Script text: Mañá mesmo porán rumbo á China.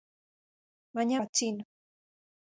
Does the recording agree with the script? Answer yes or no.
no